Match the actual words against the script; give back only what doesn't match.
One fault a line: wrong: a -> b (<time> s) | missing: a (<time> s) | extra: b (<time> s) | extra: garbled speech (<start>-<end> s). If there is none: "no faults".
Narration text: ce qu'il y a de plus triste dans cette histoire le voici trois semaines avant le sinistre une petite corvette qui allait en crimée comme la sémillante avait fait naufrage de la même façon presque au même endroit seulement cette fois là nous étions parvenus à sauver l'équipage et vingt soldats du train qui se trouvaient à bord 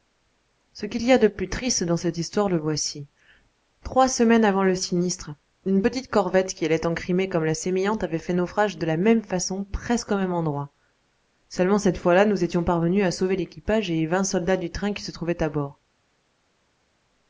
no faults